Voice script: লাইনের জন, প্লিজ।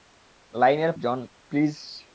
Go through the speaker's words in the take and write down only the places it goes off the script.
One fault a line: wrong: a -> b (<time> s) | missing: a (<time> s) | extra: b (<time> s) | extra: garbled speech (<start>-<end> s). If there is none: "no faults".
no faults